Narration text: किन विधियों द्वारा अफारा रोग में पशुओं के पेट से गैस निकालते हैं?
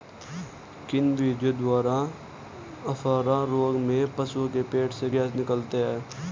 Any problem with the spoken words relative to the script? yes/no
no